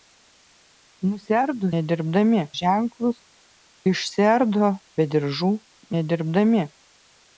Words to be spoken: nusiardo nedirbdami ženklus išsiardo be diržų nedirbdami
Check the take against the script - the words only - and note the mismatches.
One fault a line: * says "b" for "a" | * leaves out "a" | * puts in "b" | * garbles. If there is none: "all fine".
all fine